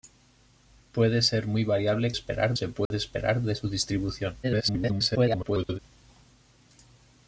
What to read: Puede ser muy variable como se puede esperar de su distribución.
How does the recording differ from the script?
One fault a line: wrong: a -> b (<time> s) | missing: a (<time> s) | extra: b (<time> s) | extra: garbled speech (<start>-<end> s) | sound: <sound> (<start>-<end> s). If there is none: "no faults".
wrong: como -> esperar (2.1 s)
sound: dropout (2.9-2.9 s)
extra: garbled speech (4.4-5.8 s)